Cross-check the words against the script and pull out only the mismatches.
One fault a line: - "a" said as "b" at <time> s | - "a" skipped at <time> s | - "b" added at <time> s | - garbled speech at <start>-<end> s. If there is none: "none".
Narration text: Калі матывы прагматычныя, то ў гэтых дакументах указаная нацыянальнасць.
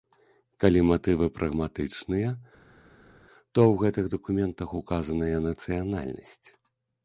none